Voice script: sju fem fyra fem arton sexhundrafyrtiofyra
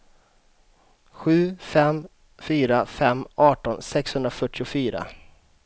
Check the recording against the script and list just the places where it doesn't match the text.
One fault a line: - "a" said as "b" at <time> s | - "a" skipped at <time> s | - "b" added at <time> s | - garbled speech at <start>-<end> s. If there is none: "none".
none